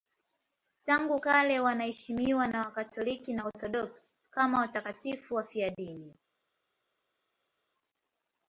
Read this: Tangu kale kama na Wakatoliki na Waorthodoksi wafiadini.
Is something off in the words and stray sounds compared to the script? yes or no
yes